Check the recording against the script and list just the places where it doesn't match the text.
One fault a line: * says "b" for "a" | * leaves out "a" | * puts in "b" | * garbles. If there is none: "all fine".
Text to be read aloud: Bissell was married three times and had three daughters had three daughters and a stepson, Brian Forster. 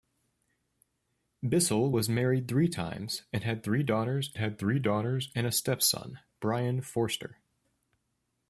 all fine